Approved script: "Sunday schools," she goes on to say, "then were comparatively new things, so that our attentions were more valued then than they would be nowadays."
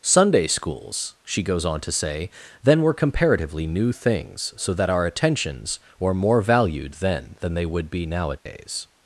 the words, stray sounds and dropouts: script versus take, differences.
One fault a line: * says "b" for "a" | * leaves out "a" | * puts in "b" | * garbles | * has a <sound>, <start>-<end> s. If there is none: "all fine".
* has a dropout, 8.4-8.5 s